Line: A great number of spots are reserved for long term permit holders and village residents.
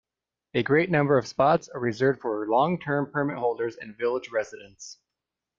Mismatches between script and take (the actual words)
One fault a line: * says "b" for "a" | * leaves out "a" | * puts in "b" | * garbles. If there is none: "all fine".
all fine